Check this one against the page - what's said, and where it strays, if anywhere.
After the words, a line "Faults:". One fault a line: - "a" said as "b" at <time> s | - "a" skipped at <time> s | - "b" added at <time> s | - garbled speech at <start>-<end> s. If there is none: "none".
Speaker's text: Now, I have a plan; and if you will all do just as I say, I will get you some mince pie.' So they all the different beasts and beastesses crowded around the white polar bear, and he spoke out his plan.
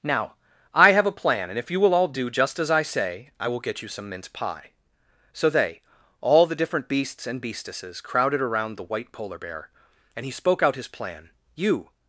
Now, I have a plan; and if you will all do just as I say, I will get you some mince pie.' So they all the different beasts and beastesses crowded around the white polar bear, and he spoke out his plan. "'You
Faults:
- "You" added at 11.6 s